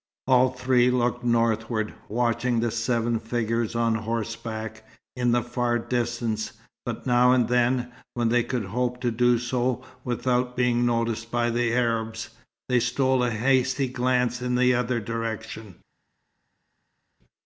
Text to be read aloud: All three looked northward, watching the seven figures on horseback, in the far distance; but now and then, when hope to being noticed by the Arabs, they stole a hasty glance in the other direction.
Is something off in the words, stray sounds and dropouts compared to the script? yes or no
yes